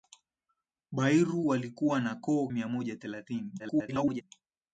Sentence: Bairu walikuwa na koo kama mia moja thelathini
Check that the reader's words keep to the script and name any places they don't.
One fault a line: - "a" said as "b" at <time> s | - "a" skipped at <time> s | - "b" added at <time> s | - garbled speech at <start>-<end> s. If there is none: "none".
- "kama" skipped at 2.5 s
- garbled speech at 3.6-4.2 s